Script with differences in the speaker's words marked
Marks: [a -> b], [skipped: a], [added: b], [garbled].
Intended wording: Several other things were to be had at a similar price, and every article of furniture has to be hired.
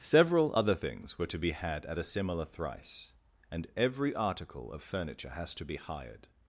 Several other things were to be had at a similar [price, -> thrice] and every article of furniture has to be hired.